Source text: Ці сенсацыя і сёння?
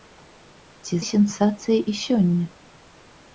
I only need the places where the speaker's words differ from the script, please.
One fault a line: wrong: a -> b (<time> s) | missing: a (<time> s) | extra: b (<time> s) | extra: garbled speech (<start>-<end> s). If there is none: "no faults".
no faults